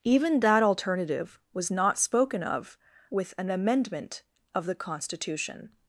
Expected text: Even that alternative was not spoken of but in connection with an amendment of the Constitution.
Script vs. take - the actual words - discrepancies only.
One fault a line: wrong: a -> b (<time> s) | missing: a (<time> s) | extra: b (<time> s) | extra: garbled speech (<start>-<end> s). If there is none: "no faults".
missing: but in connection (2.8 s)